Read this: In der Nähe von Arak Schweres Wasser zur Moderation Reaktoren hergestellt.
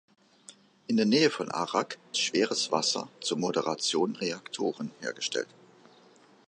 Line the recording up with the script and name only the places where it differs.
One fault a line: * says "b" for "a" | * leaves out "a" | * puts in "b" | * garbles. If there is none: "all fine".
all fine